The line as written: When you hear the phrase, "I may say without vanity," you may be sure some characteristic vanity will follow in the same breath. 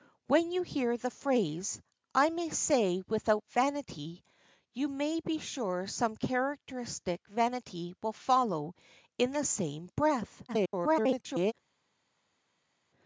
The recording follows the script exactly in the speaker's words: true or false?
false